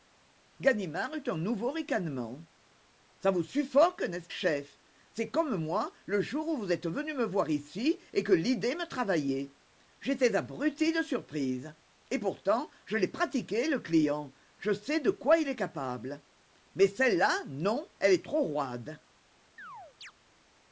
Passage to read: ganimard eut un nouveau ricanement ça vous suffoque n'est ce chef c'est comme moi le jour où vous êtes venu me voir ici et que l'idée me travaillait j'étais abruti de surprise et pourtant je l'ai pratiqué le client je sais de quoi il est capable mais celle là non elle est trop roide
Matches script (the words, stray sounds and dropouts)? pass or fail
fail